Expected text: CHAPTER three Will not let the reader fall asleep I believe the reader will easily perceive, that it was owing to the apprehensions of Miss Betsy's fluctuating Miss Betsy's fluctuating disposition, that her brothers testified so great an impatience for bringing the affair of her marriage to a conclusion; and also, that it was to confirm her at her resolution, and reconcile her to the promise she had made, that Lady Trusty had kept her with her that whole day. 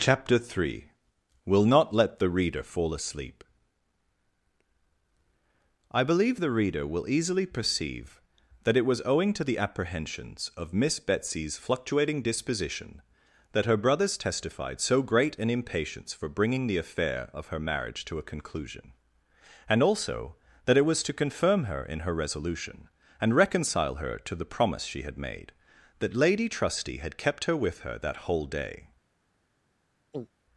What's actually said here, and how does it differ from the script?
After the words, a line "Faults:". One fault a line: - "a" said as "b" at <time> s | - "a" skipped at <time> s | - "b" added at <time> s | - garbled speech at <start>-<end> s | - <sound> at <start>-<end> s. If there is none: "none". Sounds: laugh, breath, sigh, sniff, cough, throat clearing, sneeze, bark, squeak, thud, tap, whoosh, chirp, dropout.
CHAPTER three Will not let the reader fall asleep I believe the reader will easily perceive, that it was owing to the apprehensions of Miss Betsy's fluctuating disposition, that her brothers testified so great an impatience for bringing the affair of her marriage to a conclusion; and also, that it was to confirm her in her resolution, and reconcile her to the promise she had made, that Lady Trusty had kept her with her that whole day.
Faults:
- "Miss Betsy's fluctuating" skipped at 12.2 s
- "at" said as "in" at 21.8 s
- throat clearing at 30.1-30.3 s